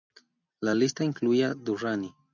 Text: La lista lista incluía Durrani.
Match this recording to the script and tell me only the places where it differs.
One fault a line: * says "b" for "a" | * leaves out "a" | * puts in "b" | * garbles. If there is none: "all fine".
* leaves out "lista"